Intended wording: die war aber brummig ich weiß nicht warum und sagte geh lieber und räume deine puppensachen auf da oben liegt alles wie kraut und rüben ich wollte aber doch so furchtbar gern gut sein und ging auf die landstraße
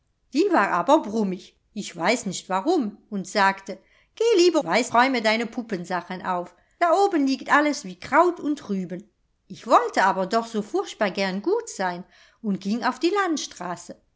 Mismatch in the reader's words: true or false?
true